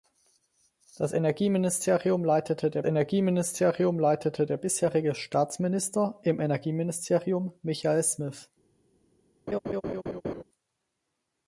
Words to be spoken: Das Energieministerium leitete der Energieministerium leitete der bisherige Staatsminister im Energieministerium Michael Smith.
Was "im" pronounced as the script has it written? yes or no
yes